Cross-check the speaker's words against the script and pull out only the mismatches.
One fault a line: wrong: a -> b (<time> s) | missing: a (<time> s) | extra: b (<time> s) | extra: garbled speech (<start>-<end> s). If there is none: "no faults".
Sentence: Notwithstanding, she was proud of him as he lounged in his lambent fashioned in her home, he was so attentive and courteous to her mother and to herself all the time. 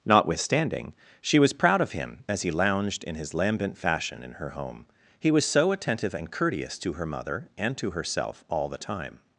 wrong: fashioned -> fashion (3.8 s)